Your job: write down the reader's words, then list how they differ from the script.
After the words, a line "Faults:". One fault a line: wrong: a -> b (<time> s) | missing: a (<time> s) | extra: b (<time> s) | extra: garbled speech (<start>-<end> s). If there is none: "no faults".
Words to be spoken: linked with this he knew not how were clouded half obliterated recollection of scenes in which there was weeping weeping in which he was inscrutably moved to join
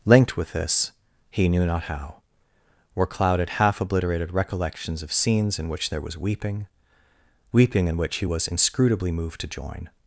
linked with this he knew not how were clouded half obliterated recollections of scenes in which there was weeping weeping in which he was inscrutably moved to join
Faults:
wrong: recollection -> recollections (4.3 s)